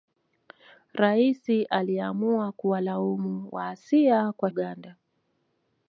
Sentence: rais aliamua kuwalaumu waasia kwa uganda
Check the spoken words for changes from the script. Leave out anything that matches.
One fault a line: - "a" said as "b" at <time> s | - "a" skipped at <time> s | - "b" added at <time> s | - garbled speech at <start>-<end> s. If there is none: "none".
none